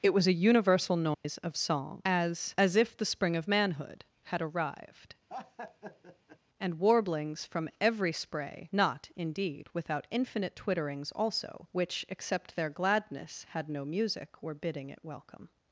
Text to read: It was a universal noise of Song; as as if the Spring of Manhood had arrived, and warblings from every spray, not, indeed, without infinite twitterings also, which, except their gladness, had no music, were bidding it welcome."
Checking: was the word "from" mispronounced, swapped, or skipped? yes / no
no